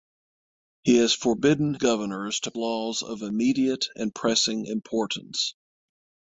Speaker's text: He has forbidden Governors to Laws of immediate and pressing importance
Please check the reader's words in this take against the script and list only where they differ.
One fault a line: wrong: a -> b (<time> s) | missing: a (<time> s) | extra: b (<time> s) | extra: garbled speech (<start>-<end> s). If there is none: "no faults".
no faults